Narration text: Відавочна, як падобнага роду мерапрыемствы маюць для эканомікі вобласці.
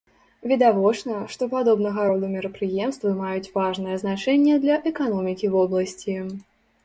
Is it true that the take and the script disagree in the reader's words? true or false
true